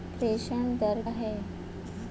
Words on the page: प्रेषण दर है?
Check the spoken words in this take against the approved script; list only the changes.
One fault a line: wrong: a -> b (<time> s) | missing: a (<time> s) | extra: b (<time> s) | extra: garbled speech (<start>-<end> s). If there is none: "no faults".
no faults